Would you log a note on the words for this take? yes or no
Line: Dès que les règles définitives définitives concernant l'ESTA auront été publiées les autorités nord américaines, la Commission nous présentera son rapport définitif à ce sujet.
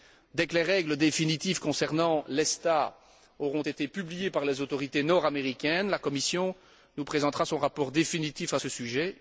yes